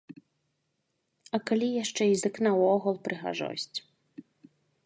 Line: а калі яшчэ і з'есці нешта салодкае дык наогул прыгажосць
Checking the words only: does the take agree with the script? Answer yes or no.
no